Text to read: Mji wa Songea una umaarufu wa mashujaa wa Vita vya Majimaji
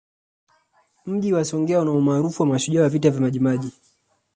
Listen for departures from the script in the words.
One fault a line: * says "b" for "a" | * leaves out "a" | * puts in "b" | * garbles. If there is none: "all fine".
all fine